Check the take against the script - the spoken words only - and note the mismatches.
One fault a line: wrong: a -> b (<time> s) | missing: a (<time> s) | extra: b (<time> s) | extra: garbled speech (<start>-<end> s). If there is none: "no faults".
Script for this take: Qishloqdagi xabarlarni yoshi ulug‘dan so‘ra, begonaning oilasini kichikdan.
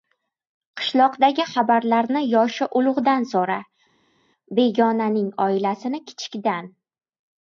no faults